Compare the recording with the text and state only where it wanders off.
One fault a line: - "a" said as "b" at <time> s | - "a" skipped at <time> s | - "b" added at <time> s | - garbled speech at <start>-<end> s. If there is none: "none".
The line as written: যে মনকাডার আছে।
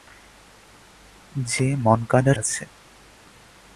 none